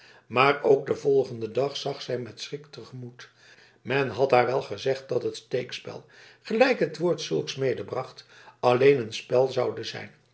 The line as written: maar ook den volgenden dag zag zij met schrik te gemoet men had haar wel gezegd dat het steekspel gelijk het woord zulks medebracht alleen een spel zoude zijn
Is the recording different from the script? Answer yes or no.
no